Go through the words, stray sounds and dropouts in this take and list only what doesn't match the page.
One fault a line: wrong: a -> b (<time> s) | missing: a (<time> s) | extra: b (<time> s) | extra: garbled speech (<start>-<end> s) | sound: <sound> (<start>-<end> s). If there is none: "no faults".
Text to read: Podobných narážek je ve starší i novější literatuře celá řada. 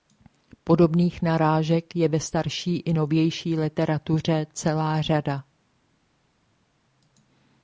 no faults